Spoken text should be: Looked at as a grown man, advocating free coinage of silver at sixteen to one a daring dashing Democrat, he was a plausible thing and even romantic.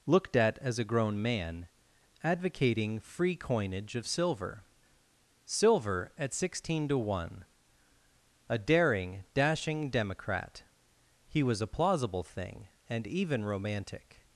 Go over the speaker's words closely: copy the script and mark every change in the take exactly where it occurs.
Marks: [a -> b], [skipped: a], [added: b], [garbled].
Looked at as a grown man, advocating free coinage of silver [added: silver] at sixteen to one a daring dashing Democrat, he was a plausible thing and even romantic.